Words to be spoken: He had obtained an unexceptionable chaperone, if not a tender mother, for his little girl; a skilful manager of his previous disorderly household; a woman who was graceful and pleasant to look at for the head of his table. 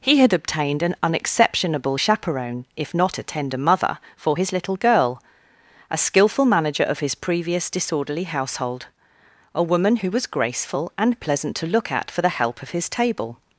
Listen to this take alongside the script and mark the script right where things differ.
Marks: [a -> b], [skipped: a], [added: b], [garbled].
He had obtained an unexceptionable chaperone, if not a tender mother, for his little girl; a skilful manager of his previous disorderly household; a woman who was graceful and pleasant to look at for the [head -> help] of his table.